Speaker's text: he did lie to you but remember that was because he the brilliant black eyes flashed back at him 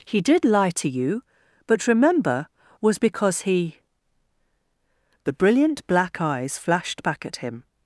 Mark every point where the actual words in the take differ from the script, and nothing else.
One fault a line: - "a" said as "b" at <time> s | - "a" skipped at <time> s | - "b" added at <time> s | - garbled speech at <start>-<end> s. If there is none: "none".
- "that" skipped at 2.5 s